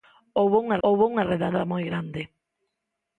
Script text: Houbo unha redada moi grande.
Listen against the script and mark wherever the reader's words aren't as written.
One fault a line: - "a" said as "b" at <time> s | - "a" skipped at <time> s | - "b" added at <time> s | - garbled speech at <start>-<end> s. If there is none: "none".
- "houbo unha" added at 0.9 s